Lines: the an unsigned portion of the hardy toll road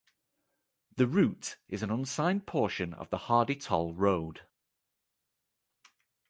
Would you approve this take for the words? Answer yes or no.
no